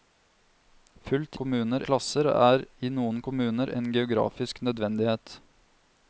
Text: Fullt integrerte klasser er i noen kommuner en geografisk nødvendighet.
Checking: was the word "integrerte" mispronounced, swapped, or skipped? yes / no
yes